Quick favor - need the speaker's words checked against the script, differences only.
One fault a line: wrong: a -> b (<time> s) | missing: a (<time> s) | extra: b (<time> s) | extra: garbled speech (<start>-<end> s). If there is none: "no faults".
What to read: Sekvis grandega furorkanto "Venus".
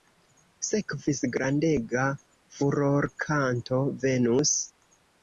no faults